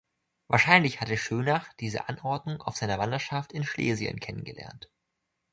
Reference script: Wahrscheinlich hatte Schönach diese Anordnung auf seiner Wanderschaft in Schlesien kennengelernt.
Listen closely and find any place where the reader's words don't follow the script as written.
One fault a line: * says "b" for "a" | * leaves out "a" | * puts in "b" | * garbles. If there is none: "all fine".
all fine